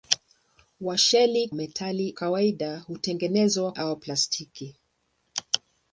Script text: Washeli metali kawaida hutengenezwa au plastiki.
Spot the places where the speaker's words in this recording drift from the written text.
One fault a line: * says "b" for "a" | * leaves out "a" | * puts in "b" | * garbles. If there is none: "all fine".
all fine